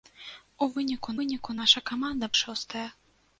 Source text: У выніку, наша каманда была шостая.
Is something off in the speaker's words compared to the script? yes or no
yes